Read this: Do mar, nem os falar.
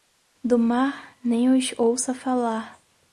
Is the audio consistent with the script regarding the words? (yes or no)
no